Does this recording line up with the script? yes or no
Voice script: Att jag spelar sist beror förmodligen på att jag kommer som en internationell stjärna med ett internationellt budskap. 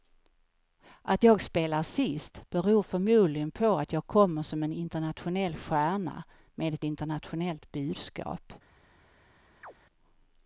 yes